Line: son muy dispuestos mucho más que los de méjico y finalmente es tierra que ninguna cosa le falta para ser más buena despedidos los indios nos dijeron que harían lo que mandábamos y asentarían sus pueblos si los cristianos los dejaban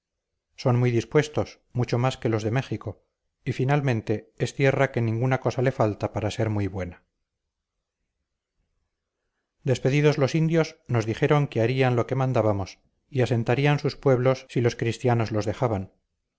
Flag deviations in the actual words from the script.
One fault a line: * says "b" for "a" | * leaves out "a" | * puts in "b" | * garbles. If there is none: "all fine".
* says "muy" for "más"